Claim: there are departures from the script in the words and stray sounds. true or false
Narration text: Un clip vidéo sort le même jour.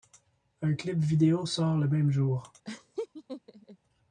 true